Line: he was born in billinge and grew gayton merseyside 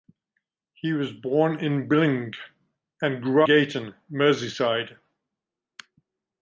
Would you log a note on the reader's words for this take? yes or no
no